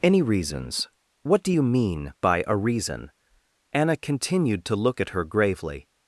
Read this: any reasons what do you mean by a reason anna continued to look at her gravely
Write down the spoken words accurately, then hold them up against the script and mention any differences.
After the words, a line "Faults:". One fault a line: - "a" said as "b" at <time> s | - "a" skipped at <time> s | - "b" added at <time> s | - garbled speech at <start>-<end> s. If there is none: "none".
any reasons what do you mean by a reason anna continued to look at her gravely
Faults:
none